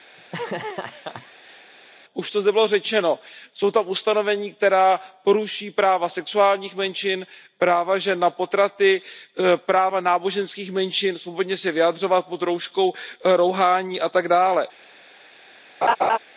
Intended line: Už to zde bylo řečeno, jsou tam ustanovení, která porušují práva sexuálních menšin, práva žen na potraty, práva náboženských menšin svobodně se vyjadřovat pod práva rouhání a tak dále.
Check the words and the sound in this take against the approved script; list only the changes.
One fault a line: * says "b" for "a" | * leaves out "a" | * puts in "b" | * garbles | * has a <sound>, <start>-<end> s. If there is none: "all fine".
* has a laugh, 0.2-1.7 s
* says "rouškou" for "práva"
* has a laugh, 15.8-16.2 s